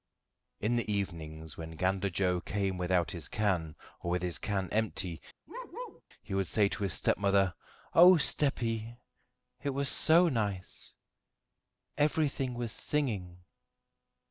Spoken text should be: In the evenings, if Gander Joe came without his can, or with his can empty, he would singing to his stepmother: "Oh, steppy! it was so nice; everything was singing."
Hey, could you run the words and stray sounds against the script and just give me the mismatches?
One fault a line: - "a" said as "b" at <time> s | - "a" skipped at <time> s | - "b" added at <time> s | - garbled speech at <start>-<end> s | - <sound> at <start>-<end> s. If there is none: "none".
- "if" said as "when" at 1.6 s
- bark at 5.5-6.0 s
- "singing" said as "say" at 6.5 s